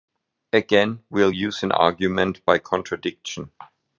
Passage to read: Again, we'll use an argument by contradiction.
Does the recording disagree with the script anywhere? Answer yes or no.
no